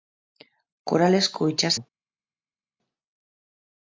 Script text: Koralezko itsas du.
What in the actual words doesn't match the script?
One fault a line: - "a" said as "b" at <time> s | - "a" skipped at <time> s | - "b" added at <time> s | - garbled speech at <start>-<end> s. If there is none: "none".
none